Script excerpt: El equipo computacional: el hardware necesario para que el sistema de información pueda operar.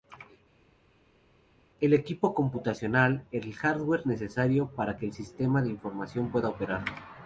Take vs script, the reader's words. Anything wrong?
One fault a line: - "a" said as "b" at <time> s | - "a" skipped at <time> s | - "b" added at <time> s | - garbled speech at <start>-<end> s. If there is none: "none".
none